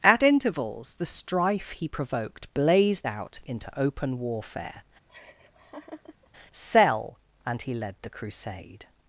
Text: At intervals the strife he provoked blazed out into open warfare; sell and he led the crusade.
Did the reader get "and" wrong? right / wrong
right